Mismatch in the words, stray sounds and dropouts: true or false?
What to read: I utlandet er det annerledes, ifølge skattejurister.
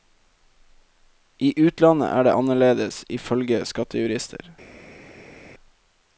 false